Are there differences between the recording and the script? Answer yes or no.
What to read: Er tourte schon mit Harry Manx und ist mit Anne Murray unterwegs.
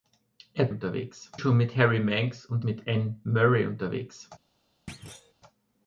yes